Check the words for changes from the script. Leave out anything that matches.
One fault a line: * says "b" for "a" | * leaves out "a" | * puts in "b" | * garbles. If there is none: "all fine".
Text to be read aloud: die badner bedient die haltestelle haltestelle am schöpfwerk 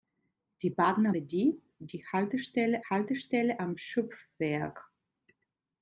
all fine